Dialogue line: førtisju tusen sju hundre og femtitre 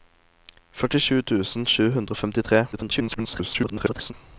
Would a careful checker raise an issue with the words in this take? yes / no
yes